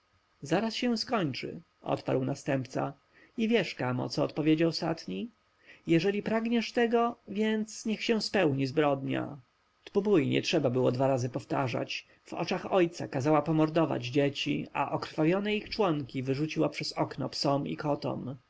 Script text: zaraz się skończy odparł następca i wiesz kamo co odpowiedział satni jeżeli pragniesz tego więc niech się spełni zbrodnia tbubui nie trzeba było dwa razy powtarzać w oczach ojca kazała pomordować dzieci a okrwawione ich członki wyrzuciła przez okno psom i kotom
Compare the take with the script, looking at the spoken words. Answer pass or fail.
pass